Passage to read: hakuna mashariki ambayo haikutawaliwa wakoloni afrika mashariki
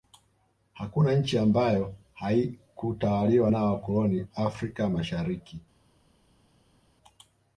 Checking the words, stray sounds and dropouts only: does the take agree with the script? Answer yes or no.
no